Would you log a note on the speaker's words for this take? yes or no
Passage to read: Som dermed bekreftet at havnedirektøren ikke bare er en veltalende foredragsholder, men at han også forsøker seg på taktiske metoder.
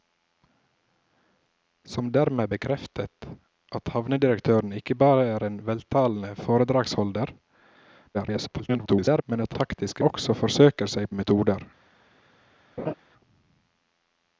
yes